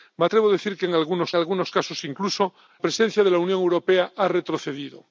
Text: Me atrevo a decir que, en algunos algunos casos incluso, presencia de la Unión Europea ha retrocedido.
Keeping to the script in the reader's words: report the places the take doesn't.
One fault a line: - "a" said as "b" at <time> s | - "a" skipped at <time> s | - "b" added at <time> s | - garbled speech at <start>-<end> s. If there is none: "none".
none